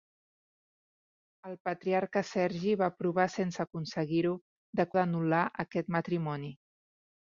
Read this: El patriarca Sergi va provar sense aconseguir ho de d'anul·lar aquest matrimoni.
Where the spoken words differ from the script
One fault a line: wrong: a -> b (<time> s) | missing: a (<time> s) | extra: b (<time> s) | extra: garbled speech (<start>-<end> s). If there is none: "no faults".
no faults